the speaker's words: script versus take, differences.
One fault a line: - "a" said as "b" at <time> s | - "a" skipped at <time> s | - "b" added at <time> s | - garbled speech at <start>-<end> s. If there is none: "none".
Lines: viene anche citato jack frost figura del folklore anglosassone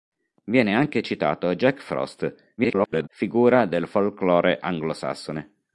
- garbled speech at 2.6-3.1 s